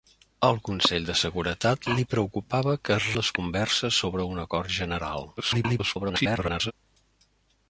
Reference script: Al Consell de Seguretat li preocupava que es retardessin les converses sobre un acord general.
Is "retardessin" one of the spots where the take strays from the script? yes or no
yes